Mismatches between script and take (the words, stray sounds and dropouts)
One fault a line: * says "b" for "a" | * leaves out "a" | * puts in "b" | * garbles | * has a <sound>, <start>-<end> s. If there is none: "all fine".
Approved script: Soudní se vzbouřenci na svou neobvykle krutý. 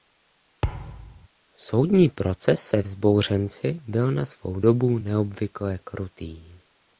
* has a thud, 0.6-1.3 s
* puts in "proces"
* puts in "byl"
* puts in "dobu"